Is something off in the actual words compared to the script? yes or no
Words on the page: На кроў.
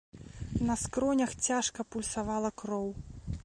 yes